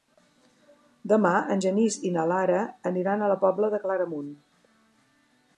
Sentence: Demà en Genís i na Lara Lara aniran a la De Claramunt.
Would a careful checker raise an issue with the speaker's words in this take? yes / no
yes